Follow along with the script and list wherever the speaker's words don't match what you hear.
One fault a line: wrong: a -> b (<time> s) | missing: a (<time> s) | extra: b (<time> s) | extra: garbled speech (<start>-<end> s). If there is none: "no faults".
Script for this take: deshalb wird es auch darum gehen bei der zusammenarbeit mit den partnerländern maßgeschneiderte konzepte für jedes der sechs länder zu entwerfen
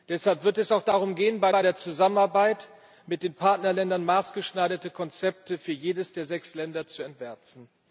extra: bei (1.5 s)